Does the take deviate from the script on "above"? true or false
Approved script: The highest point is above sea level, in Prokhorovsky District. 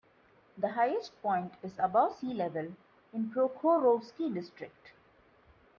false